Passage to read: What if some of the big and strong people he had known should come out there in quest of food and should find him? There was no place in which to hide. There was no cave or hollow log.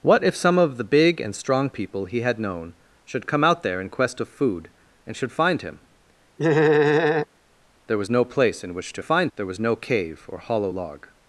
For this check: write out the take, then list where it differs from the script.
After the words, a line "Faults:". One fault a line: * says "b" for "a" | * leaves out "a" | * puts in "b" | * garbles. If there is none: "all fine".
What if some of the big and strong people he had known should come out there in quest of food and should find him? There was no place in which to find. There was no cave or hollow log.
Faults:
* says "find" for "hide"